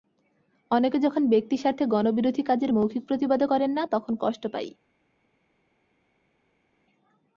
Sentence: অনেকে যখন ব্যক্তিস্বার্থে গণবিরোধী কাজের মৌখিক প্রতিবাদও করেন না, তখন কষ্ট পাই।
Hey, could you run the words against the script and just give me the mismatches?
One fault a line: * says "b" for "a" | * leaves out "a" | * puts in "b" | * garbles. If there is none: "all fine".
all fine